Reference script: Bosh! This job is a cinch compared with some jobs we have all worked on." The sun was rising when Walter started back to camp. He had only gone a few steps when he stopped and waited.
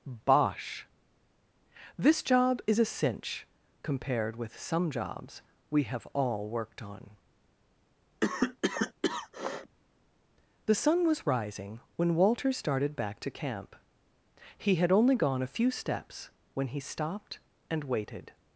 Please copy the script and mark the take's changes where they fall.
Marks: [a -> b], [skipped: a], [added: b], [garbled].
Bosh! This job is a cinch compared with some jobs we have all worked on." The sun was rising when Walter started back to camp. He had only gone a few steps when he stopped and waited.